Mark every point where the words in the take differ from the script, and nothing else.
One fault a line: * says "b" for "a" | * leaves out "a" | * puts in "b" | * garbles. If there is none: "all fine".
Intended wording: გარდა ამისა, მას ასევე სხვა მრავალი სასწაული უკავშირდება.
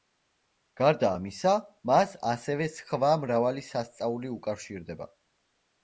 all fine